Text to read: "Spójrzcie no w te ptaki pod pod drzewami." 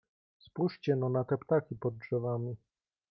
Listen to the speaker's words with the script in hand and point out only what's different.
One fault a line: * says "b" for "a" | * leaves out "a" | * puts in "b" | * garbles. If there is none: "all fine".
* says "na" for "w"
* leaves out "pod"